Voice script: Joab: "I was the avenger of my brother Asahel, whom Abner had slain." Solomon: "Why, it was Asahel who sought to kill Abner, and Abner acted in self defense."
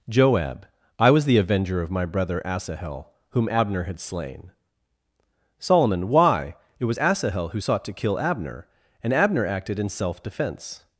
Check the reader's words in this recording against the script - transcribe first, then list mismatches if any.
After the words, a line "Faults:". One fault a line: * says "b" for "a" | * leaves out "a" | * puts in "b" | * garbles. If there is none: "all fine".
Joab: "I was the avenger of my brother Asahel, whom Abner had slain." Solomon: "Why, it was Asahel who sought to kill Abner, and Abner acted in self defense."
Faults:
all fine